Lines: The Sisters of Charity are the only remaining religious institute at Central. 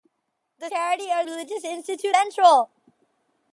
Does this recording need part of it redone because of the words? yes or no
yes